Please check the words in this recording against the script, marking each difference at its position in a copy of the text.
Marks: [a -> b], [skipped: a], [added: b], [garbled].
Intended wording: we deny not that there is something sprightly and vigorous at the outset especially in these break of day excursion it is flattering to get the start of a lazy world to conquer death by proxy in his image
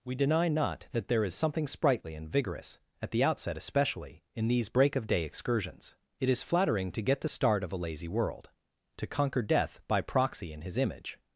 we deny not that there is something sprightly and vigorous at the outset especially in these break of day [excursion -> excursions] it is flattering to get the start of a lazy world to conquer death by proxy in his image